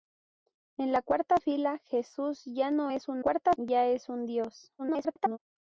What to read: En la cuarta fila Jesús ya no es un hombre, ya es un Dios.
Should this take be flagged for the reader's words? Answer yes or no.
yes